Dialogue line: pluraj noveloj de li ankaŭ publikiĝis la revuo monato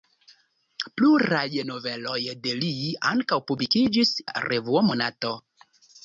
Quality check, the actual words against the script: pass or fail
pass